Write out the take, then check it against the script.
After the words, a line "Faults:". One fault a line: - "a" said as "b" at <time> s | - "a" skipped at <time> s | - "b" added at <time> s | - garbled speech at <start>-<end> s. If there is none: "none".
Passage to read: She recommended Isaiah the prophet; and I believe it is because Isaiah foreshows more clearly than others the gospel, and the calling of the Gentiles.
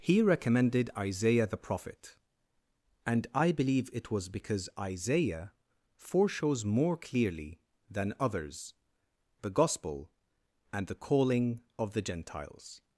He recommended Isaiah the prophet; and I believe it was because Isaiah foreshows more clearly than others the gospel, and the calling of the Gentiles.
Faults:
- "She" said as "He" at 0.0 s
- "is" said as "was" at 4.1 s